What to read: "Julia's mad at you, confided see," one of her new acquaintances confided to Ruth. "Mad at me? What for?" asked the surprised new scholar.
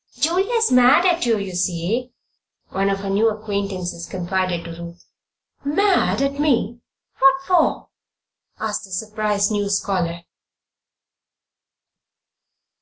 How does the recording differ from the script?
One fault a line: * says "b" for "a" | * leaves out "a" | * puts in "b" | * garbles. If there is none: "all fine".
* says "you" for "confided"